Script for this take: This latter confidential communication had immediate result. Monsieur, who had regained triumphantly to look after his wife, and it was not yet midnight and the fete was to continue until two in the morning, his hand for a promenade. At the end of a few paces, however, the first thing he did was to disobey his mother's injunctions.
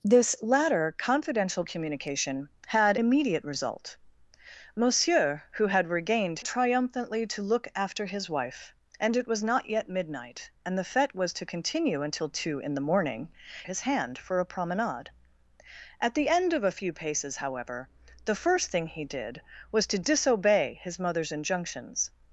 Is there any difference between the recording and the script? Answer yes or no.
no